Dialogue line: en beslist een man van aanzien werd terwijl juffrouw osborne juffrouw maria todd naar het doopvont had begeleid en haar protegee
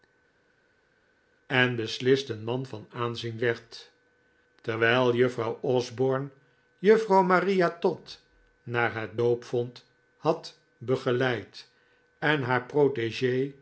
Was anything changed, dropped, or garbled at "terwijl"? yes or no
no